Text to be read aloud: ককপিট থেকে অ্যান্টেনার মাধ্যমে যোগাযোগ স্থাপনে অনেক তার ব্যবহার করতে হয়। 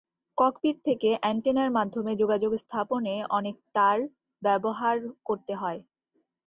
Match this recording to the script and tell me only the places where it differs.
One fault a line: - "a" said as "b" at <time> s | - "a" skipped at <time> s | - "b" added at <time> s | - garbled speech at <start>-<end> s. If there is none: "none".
none